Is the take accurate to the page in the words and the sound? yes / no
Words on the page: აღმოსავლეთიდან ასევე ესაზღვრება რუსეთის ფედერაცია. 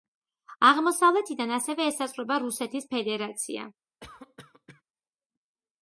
no